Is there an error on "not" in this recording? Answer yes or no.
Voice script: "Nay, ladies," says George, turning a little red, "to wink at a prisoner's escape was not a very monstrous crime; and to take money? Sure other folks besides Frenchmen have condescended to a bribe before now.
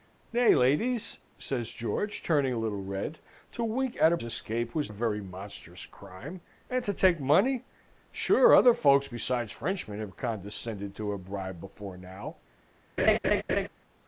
yes